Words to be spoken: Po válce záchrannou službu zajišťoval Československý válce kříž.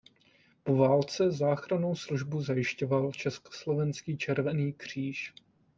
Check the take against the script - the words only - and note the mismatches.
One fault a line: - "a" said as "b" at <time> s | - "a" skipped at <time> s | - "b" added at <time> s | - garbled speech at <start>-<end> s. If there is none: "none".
- "válce" said as "červený" at 4.2 s